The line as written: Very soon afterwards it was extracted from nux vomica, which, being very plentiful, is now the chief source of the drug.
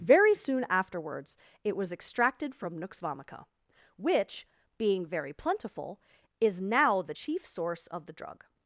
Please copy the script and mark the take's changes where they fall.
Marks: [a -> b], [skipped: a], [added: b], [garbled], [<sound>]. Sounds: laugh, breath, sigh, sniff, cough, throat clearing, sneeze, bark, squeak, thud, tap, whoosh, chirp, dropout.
Very soon afterwards it was extracted from nux vomica, which, being very plentiful, is now the chief source of the drug.